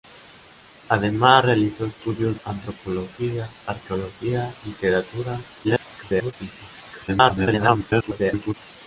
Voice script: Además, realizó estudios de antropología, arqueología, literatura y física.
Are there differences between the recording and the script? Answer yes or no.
yes